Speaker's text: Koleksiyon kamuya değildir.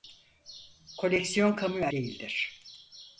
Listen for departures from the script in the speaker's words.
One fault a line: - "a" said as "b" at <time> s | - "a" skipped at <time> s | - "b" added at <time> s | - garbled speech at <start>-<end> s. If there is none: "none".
none